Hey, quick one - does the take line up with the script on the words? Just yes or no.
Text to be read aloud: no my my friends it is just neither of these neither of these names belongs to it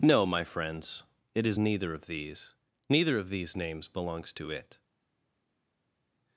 no